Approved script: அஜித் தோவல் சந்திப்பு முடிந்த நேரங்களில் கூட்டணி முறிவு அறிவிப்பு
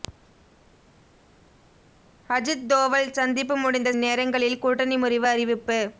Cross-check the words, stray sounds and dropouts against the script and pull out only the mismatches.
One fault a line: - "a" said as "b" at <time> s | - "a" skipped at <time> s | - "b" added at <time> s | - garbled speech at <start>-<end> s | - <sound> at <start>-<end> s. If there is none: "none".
none